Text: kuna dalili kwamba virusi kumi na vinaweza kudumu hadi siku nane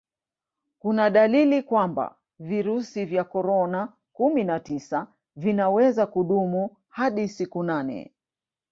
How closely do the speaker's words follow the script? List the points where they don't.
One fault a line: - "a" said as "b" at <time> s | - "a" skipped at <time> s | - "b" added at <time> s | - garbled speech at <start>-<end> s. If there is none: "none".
- "vya korona" added at 3.1 s
- "tisa" added at 4.6 s